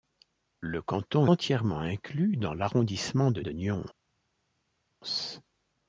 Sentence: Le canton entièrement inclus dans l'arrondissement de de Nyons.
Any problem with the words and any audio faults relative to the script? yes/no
no